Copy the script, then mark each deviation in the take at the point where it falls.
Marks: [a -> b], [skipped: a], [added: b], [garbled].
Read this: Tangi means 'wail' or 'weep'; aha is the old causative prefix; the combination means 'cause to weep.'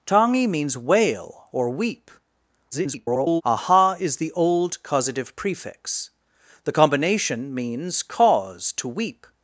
Tangi means 'wail' or 'weep'; [garbled] aha is the old causative prefix; the combination means 'cause to weep.'